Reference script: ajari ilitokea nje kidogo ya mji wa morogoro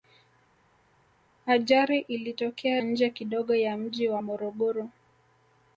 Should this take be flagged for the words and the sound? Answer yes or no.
no